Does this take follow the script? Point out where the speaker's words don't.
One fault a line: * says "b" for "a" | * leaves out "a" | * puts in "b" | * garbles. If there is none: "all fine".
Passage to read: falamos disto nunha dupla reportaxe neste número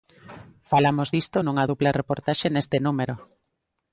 all fine